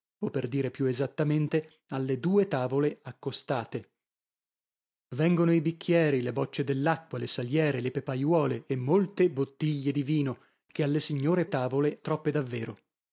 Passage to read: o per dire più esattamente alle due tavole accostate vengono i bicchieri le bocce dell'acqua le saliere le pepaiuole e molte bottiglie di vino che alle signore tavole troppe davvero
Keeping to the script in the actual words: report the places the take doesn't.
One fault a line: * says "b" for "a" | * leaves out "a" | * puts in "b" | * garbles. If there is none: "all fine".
all fine